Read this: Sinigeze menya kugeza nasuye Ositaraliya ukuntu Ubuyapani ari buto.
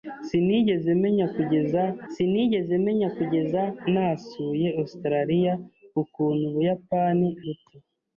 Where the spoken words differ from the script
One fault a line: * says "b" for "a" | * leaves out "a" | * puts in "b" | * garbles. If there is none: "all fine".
* puts in "sinigeze menya kugeza"
* leaves out "ari"